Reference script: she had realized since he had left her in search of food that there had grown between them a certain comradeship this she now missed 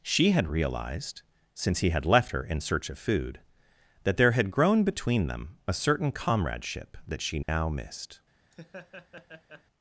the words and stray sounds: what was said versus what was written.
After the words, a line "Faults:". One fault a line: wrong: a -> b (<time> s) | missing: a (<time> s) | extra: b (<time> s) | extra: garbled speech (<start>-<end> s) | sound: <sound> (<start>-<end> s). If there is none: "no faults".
she had realized since he had left her in search of food that there had grown between them a certain comradeship that she now missed
Faults:
wrong: this -> that (7.1 s)
sound: dropout (7.4-7.5 s)
sound: laugh (8.5-9.6 s)